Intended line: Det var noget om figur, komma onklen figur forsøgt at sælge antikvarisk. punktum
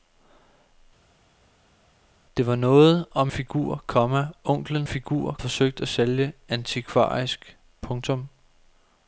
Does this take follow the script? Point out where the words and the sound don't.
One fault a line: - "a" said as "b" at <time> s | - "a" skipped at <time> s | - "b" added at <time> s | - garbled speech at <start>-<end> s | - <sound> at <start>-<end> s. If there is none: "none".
none